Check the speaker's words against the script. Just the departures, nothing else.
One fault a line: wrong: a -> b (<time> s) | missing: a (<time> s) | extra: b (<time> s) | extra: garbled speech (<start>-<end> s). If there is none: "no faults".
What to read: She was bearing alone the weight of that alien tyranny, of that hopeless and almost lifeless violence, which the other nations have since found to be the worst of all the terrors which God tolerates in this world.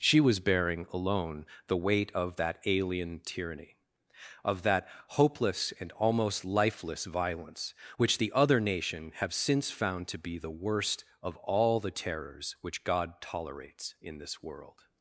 wrong: nations -> nation (8.6 s)